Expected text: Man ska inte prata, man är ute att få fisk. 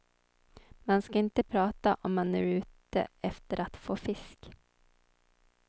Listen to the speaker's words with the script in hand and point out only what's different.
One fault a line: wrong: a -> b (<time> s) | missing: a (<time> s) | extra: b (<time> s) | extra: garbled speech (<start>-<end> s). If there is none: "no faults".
extra: om (2.0 s)
extra: efter (3.2 s)